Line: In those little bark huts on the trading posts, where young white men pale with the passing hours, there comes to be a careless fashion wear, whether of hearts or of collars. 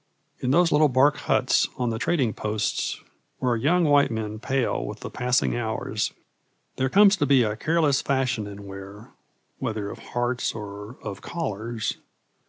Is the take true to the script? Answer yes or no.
no